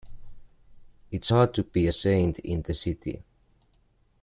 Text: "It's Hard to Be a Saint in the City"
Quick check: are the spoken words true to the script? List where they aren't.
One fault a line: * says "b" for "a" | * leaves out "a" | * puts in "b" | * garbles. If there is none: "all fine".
all fine